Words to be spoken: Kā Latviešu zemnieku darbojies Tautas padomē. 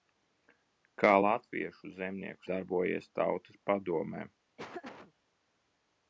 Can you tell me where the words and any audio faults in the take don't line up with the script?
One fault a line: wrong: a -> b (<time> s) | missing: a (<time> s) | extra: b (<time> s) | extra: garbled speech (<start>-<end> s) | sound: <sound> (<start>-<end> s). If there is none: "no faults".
sound: laugh (4.6-5.1 s)